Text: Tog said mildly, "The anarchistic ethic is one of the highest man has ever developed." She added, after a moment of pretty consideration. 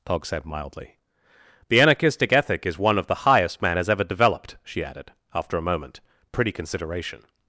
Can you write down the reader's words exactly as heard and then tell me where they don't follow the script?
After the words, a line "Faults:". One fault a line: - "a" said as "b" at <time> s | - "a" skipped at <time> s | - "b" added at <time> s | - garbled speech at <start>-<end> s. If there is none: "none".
Tog said mildly, "The anarchistic ethic is one of the highest man has ever developed." She added, after a moment pretty consideration.
Faults:
- "of" skipped at 6.0 s